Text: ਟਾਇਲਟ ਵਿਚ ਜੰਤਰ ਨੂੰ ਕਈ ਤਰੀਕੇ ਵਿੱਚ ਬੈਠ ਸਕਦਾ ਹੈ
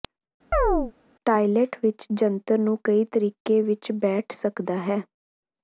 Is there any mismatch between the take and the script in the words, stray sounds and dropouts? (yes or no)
yes